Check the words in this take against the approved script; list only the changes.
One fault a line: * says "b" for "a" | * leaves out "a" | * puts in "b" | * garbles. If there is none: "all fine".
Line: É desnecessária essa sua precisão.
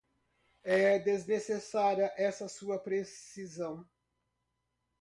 all fine